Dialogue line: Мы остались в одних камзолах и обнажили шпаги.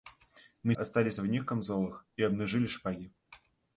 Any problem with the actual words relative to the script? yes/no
no